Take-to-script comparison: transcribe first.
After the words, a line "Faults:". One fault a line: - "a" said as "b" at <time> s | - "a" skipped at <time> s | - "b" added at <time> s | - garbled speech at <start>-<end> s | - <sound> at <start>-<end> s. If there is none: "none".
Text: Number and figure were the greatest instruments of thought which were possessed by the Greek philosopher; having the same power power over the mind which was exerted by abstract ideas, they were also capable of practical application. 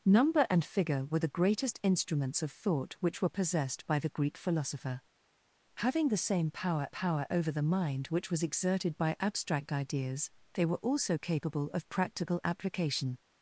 Number and figure were the greatest instruments of thought which were possessed by the Greek philosopher; having the same power power over the mind which was exerted by abstract ideas, they were also capable of practical application.
Faults:
none